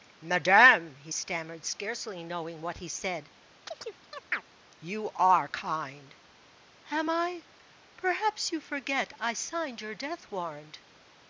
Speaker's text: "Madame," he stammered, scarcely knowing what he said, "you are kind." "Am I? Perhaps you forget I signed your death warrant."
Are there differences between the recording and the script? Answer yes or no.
no